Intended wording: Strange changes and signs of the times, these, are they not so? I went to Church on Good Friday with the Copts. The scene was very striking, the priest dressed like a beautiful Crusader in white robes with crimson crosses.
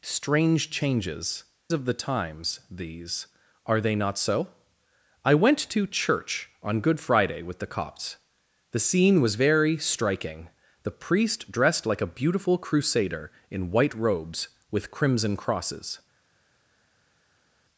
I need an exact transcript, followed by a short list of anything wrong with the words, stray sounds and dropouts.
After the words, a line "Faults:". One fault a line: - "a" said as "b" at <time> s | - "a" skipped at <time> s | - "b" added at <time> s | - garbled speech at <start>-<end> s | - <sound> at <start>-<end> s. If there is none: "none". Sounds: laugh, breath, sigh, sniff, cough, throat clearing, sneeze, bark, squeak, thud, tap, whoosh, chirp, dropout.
Strange changes of the times, these, are they not so? I went to Church on Good Friday with the Copts. The scene was very striking, the priest dressed like a beautiful Crusader in white robes with crimson crosses.
Faults:
- "and signs" skipped at 1.4 s